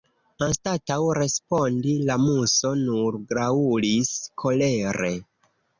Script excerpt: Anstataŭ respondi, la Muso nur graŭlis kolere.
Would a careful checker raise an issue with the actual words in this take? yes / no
no